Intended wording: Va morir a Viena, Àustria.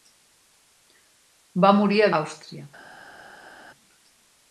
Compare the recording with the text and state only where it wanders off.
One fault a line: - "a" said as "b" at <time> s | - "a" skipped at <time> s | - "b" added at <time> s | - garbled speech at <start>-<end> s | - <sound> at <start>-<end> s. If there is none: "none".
- "Viena" skipped at 2.1 s